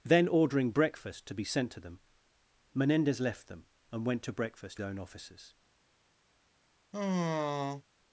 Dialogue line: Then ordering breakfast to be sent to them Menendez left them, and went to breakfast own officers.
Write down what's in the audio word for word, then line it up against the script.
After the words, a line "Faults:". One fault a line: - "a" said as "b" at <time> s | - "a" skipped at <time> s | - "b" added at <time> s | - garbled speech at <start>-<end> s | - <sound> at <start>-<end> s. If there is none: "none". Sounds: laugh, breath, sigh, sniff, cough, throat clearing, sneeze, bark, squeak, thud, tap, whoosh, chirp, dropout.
Then ordering breakfast to be sent to them Menendez left them, and went to breakfast own officers.
Faults:
- sigh at 6.9-7.8 s